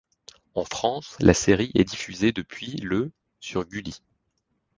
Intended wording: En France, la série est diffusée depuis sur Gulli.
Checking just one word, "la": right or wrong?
right